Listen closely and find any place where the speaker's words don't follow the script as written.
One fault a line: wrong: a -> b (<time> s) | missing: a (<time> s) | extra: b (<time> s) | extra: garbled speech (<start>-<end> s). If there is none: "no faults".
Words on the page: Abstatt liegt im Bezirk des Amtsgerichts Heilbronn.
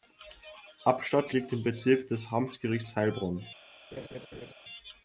no faults